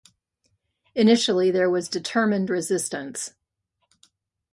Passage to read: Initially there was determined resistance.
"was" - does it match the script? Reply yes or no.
yes